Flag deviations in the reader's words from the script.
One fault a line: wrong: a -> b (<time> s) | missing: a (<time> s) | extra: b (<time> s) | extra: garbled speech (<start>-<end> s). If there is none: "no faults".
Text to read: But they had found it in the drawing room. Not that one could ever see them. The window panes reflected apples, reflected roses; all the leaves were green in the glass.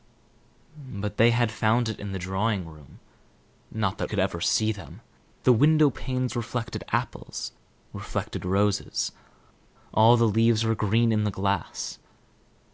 missing: one (4.1 s)